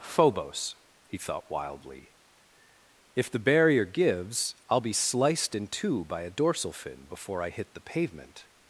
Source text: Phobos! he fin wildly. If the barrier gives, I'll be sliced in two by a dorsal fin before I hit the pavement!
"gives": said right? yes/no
yes